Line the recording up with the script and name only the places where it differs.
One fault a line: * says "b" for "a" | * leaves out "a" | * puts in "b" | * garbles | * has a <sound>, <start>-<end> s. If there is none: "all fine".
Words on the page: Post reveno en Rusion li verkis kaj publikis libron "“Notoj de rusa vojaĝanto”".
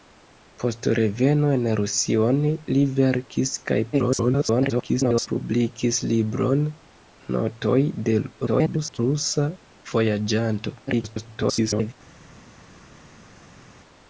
* garbles
* garbles
* garbles